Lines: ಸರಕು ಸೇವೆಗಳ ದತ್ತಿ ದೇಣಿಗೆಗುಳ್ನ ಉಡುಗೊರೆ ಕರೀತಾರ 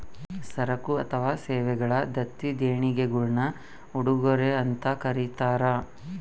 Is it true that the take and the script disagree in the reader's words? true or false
true